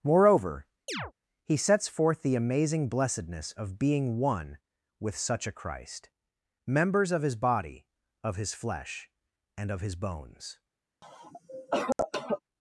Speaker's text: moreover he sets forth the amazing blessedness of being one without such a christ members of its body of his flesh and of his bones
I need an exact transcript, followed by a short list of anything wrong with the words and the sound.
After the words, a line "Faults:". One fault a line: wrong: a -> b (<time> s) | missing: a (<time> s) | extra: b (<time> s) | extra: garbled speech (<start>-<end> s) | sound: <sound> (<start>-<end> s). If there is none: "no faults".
moreover he sets forth the amazing blessedness of being one with such a christ members of his body of his flesh and of his bones
Faults:
sound: chirp (0.9-1.1 s)
wrong: without -> with (5.0 s)
wrong: its -> his (7.2 s)
sound: cough (11.0-12.4 s)